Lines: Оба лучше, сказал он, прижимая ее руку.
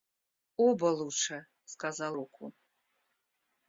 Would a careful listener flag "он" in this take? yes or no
yes